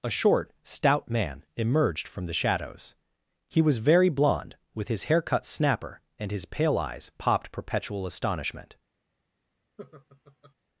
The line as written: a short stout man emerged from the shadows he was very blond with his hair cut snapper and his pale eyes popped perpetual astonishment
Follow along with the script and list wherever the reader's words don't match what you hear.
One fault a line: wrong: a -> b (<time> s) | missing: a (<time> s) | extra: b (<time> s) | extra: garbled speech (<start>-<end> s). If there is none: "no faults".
no faults